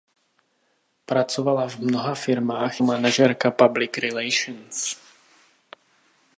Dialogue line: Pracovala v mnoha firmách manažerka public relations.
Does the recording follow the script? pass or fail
pass